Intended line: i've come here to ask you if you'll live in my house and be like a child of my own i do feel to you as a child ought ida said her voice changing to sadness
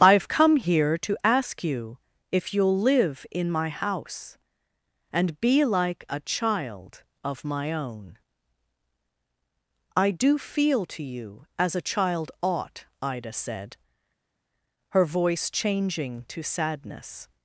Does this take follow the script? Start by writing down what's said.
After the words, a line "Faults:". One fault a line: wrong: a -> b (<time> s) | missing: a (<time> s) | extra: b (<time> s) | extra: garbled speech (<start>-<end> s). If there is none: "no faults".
i've come here to ask you if you'll live in my house and be like a child of my own i do feel to you as a child ought ida said her voice changing to sadness
Faults:
no faults